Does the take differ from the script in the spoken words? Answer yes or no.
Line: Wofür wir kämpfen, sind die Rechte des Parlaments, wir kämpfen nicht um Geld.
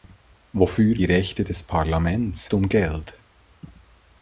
yes